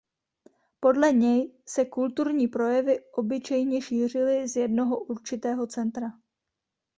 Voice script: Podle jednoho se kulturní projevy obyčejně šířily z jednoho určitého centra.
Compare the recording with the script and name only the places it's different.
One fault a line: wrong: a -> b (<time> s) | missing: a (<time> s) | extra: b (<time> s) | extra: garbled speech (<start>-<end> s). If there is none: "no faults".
wrong: jednoho -> něj (1.1 s)